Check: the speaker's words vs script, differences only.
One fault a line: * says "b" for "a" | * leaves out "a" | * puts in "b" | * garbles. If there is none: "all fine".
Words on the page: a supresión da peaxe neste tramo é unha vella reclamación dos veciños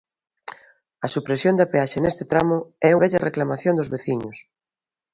* leaves out "unha"